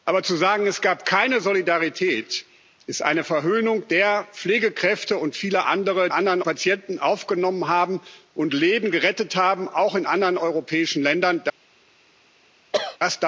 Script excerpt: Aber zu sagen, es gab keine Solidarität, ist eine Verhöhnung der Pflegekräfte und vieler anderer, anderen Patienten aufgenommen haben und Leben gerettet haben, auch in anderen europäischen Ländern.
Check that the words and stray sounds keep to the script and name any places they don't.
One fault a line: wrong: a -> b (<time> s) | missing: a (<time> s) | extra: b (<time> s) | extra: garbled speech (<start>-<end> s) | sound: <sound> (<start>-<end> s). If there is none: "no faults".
sound: cough (12.7-13.0 s)